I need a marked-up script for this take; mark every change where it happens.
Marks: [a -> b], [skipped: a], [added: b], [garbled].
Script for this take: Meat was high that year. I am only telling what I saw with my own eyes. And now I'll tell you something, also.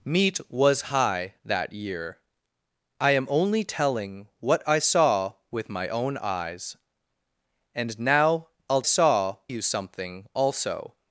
Meat was high that year. I am only telling what I saw with my own eyes. And now I'll [tell -> saw] you something, also.